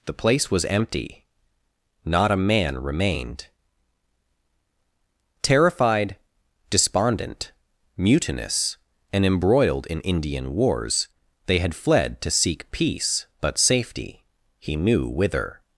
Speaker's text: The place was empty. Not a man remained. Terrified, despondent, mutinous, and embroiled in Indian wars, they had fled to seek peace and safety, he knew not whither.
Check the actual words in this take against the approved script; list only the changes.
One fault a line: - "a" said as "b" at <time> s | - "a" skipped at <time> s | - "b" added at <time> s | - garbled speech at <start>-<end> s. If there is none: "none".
- "and" said as "but" at 13.4 s
- "not" skipped at 15.1 s